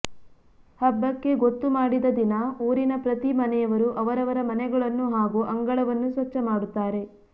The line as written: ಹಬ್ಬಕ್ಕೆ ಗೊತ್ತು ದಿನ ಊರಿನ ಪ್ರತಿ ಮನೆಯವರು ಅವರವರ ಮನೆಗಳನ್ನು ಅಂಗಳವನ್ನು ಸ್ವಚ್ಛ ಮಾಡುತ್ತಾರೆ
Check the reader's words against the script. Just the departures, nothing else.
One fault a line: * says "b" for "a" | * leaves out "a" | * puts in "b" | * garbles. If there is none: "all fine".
* puts in "ಮಾಡಿದ"
* puts in "ಹಾಗೂ"